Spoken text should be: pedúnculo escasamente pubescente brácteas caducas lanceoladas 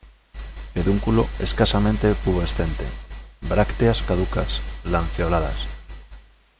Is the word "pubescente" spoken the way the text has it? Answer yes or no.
yes